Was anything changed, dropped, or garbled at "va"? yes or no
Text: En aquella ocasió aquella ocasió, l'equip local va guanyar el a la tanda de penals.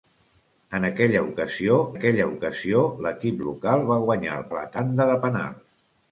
no